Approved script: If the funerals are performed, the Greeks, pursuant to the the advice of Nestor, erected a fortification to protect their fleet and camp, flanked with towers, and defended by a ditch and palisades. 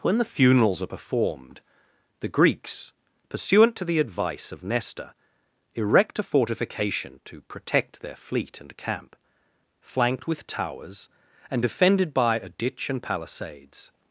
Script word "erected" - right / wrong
wrong